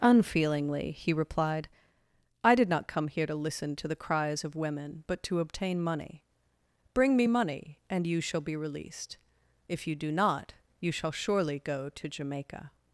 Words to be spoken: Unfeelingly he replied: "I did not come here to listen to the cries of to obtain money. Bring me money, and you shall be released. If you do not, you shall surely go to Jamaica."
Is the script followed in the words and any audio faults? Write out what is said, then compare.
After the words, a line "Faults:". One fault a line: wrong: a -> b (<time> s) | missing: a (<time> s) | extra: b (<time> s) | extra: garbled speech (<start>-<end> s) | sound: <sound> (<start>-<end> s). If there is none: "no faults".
Unfeelingly he replied: "I did not come here to listen to the cries of women, but to obtain money. Bring me money, and you shall be released. If you do not, you shall surely go to Jamaica."
Faults:
extra: women but (4.5 s)